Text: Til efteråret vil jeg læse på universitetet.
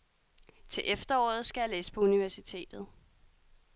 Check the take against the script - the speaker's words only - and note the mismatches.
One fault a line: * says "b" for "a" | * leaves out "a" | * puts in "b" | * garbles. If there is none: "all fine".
* says "skal" for "vil"